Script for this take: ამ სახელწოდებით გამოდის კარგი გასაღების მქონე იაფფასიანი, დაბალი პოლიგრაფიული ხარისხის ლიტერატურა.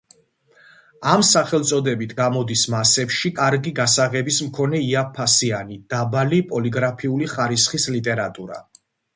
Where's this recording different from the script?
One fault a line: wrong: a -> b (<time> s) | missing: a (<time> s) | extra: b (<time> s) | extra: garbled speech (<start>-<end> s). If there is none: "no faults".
extra: მასებში (2.8 s)